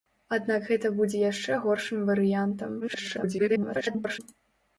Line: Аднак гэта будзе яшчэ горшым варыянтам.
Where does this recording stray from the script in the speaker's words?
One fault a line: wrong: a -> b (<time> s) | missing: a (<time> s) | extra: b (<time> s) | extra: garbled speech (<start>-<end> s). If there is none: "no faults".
extra: garbled speech (2.8-4.2 s)